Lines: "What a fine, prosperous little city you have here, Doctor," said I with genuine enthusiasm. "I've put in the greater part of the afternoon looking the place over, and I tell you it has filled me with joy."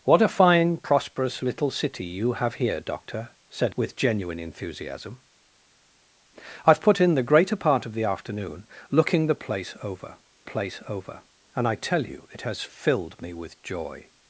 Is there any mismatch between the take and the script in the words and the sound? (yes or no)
yes